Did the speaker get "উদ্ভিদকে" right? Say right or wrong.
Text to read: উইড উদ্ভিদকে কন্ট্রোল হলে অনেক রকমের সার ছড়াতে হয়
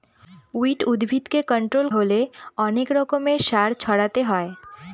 right